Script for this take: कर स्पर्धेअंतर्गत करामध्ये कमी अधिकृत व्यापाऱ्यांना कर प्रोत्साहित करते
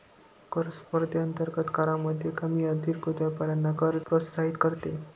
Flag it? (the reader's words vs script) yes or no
no